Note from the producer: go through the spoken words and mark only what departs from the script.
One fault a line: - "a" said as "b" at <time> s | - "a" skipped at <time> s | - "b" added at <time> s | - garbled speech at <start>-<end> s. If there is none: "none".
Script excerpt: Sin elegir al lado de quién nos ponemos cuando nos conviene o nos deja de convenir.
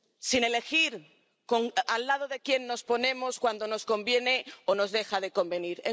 none